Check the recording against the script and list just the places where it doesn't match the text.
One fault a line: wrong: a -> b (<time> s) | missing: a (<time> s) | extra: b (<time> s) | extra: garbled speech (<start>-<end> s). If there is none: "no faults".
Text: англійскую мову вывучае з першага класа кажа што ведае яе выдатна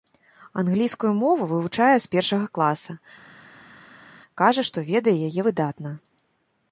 no faults